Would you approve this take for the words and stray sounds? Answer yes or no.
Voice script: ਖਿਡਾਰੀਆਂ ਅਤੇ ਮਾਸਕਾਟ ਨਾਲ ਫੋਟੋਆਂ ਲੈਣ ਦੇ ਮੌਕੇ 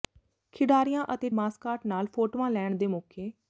yes